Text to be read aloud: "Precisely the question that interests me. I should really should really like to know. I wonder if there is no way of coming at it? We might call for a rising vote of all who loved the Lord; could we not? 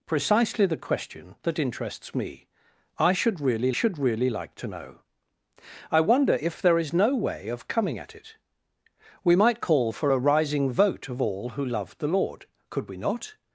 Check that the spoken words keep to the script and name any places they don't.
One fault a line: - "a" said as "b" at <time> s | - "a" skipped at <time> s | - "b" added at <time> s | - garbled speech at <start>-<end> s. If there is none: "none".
none